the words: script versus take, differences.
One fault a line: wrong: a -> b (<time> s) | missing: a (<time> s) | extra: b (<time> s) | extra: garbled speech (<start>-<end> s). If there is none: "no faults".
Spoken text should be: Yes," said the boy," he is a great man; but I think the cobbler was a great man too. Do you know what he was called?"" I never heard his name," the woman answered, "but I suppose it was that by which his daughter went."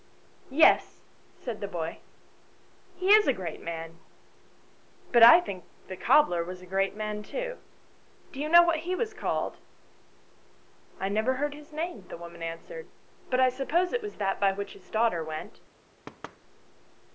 no faults